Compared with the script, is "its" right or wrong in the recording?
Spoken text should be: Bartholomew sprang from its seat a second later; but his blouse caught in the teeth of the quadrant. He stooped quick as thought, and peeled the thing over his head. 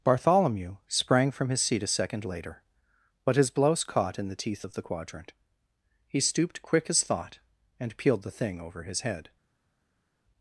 wrong